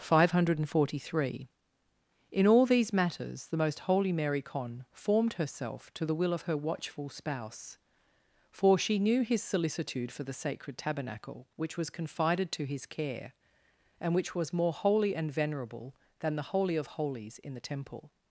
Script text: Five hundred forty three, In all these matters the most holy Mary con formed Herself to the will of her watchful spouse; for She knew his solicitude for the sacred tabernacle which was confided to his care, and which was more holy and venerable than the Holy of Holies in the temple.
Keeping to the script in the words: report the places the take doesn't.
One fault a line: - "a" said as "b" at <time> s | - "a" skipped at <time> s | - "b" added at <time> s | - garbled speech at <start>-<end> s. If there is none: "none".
none